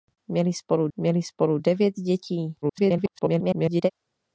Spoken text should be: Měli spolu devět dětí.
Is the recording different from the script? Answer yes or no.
yes